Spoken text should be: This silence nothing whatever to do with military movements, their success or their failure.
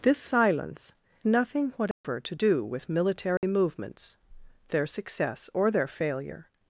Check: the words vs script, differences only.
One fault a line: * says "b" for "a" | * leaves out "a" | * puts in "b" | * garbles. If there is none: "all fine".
all fine